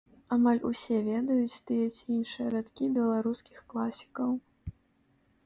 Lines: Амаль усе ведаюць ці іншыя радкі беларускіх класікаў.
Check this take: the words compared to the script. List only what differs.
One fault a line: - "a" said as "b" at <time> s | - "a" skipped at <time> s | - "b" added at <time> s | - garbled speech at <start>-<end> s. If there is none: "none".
- "тыя" added at 1.7 s